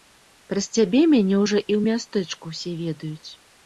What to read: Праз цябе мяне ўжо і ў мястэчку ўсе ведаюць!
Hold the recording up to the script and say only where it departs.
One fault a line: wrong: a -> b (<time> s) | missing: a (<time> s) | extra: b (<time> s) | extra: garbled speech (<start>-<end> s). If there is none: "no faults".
no faults